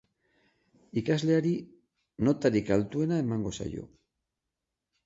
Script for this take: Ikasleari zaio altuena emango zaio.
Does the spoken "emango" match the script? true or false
true